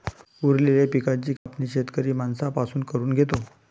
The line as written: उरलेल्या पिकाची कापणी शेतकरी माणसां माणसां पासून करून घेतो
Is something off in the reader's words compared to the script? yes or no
yes